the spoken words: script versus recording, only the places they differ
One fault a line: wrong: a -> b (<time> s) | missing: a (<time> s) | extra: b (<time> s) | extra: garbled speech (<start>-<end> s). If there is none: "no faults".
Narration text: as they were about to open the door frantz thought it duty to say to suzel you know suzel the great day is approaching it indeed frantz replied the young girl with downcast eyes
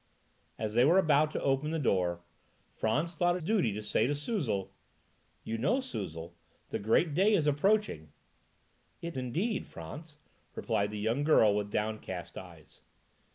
no faults